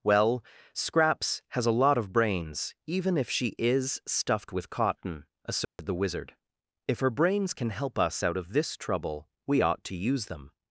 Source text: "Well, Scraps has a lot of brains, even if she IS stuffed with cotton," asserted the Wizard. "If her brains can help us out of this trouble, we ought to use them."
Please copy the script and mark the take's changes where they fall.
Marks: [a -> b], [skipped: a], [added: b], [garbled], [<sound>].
"Well, Scraps has a lot of brains, even if she IS stuffed with cotton," asserted [dropout] the Wizard. "If her brains can help us out of this trouble, we ought to use them."